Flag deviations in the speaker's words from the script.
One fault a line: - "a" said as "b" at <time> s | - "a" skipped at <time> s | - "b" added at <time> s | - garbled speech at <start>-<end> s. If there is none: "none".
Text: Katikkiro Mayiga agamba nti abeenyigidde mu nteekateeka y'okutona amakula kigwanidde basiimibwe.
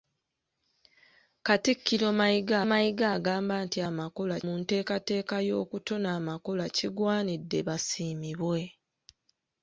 - "Mayiga" added at 2.7 s
- "abeenyigidde" said as "amakula" at 3.9 s